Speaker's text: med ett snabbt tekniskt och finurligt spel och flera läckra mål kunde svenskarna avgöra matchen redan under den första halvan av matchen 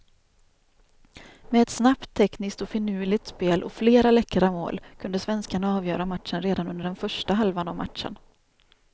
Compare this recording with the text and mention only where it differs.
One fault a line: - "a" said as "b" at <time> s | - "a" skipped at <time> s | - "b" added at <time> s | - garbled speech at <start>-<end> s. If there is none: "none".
none